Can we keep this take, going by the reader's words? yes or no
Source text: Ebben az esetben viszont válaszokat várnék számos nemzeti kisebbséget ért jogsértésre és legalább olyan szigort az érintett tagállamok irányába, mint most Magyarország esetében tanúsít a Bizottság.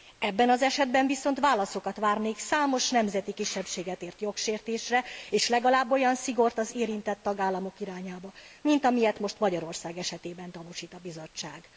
no